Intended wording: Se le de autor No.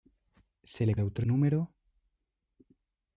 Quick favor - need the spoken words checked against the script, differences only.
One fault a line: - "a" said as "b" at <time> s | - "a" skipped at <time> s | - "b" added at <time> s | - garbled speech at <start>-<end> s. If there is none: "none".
none